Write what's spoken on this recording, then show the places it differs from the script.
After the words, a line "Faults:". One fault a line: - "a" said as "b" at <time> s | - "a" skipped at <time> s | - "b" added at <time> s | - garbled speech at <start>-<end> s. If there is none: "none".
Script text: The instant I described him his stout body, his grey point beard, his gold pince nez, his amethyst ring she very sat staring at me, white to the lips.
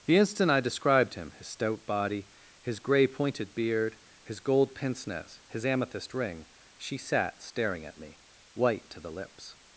The instant I described him his stout body, his grey pointed beard, his gold pince nez, his amethyst ring she sat staring at me, white to the lips.
Faults:
- "point" said as "pointed" at 3.1 s
- "very" skipped at 7.0 s